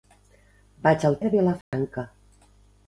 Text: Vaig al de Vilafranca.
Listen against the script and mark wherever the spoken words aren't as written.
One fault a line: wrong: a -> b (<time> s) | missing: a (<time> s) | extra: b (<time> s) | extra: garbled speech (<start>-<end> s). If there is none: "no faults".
no faults